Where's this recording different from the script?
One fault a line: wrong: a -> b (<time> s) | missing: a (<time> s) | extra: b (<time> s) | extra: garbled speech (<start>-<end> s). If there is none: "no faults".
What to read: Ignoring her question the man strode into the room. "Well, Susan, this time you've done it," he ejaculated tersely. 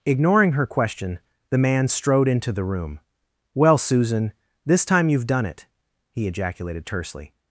no faults